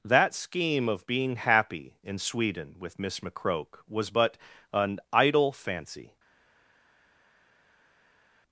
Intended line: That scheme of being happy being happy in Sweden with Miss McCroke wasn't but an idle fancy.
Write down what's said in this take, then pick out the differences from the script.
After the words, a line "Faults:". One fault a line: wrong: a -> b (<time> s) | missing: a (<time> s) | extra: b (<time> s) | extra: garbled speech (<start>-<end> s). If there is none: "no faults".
That scheme of being happy in Sweden with Miss McCroke was but an idle fancy.
Faults:
missing: being happy (1.9 s)
wrong: wasn't -> was (3.9 s)